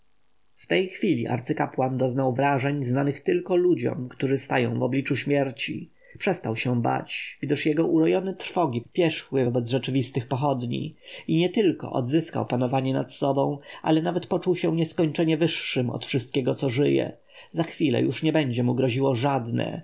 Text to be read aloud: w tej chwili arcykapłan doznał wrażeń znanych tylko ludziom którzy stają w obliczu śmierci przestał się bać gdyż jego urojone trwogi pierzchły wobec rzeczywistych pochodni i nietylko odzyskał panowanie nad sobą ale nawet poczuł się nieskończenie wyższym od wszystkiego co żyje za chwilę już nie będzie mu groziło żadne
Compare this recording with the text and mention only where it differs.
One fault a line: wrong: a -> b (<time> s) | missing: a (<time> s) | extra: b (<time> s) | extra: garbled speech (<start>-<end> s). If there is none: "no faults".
no faults